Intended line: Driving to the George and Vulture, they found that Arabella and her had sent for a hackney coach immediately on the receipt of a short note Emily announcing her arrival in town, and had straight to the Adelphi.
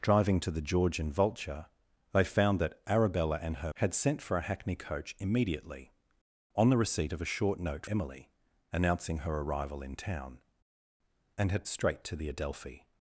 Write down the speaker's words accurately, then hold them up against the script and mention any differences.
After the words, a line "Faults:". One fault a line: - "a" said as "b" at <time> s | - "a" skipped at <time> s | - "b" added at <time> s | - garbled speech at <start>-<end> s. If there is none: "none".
Driving to the George and Vulture, they found that Arabella and her had sent for a hackney coach immediately on the receipt of a short note Emily announcing her arrival in town, and had straight to the Adelphi.
Faults:
none